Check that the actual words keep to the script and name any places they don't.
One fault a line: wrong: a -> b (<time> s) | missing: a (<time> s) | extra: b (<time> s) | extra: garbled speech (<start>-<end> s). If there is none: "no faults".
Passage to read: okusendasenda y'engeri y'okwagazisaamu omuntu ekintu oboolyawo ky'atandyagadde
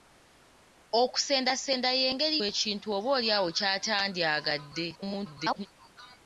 missing: y'okwagazisaamu omuntu (2.4 s)
extra: garbled speech (5.0-5.7 s)